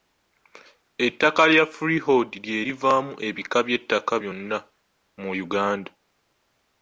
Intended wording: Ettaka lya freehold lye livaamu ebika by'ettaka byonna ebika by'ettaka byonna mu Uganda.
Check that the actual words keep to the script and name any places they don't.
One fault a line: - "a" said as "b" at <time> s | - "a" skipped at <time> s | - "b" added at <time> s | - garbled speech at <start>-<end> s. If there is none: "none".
- "ebika by'ettaka byonna" skipped at 4.6 s